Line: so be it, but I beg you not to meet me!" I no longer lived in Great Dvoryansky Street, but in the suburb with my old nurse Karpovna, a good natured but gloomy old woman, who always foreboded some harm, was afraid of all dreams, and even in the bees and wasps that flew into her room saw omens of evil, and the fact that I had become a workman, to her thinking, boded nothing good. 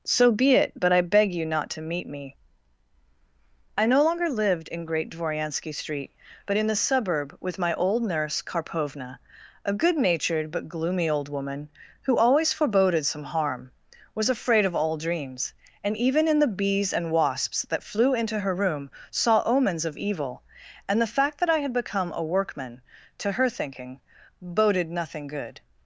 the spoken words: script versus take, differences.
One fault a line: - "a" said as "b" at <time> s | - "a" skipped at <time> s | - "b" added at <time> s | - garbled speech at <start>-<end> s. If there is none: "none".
none